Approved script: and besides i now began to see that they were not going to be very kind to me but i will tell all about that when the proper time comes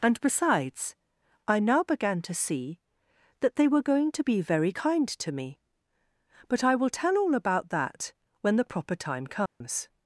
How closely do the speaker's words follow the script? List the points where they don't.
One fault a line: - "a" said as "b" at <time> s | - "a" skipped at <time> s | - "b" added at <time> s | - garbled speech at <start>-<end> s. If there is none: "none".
- "not" skipped at 3.8 s